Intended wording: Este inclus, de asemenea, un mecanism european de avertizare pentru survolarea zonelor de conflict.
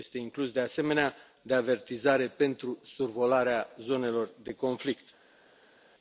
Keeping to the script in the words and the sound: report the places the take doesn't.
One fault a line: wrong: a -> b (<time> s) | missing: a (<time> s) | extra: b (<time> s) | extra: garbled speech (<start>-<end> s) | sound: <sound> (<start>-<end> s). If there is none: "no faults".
missing: un mecanism european (1.1 s)